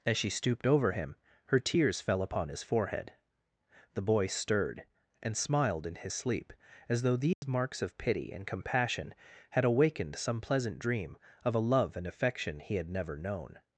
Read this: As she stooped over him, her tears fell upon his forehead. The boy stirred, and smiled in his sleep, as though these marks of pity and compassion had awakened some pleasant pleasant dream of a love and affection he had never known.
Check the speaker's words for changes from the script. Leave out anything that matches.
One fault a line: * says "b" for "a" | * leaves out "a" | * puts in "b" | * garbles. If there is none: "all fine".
* leaves out "pleasant"